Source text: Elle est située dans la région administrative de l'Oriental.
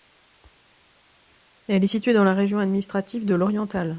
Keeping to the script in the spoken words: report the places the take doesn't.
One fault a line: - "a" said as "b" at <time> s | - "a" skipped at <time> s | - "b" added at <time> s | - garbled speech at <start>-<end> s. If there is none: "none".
none